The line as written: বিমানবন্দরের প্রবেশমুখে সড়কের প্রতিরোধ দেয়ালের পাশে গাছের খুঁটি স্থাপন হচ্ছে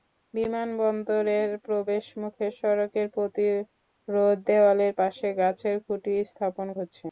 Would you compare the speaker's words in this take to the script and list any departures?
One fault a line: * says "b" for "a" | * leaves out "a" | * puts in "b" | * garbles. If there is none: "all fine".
all fine